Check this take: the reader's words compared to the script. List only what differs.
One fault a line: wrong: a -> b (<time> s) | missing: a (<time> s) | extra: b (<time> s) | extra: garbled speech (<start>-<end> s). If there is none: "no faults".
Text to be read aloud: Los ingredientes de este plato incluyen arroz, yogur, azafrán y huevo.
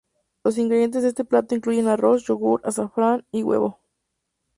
no faults